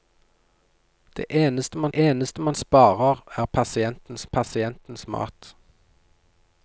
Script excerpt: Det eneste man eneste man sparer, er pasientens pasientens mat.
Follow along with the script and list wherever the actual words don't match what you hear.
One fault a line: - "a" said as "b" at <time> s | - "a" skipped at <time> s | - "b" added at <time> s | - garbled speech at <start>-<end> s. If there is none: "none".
none